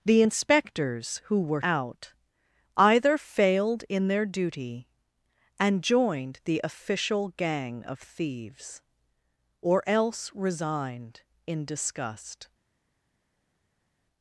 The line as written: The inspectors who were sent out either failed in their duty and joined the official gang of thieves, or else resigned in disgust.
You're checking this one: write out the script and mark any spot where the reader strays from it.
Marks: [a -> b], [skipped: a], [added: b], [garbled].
The inspectors who were [skipped: sent] out either failed in their duty and joined the official gang of thieves, or else resigned in disgust.